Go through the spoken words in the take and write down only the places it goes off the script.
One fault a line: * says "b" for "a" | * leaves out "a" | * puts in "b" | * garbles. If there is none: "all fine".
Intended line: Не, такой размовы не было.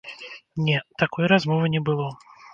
all fine